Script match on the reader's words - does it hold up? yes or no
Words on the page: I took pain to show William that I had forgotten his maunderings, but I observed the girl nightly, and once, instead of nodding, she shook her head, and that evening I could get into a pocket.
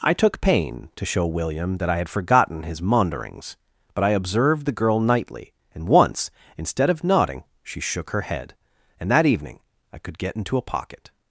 yes